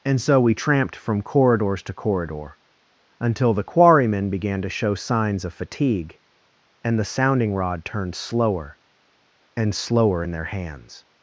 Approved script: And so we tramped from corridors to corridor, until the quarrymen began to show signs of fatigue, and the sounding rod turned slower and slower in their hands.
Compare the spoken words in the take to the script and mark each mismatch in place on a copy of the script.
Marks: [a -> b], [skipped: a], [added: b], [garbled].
And so we tramped from corridors to corridor, until the quarrymen began to show signs of fatigue, and the sounding rod turned slower and slower in their hands.